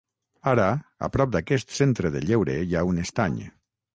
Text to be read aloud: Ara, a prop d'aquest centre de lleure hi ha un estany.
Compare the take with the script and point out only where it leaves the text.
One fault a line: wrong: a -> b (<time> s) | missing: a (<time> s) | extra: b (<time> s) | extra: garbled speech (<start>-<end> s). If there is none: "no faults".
no faults